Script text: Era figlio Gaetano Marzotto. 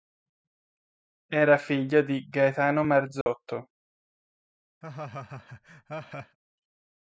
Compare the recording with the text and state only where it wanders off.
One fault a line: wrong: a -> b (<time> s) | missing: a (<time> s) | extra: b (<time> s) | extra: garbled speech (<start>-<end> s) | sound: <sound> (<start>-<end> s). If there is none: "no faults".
extra: di (2.0 s)
sound: dropout (3.2-3.3 s)
sound: laugh (4.8-6.4 s)